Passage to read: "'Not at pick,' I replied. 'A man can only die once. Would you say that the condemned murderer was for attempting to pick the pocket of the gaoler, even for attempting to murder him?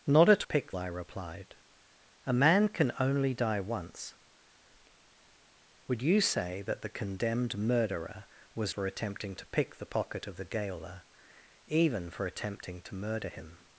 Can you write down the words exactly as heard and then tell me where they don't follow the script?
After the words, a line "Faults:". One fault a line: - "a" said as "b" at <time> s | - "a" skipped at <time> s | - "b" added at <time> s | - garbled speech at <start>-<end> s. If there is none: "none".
"'Not at pick,' I replied. 'A man can only die once. Would you say that the condemned murderer was for attempting to pick the pocket of the gaoler, even for attempting to murder him?
Faults:
none